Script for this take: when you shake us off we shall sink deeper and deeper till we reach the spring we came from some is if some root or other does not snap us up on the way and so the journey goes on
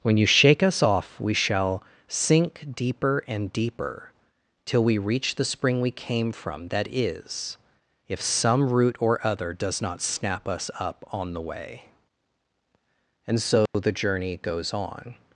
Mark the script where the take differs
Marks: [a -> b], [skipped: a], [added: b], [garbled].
when you shake us off we shall sink deeper and deeper till we reach the spring we came from [some -> that] is if some root or other does not snap us up on the way and so the journey goes on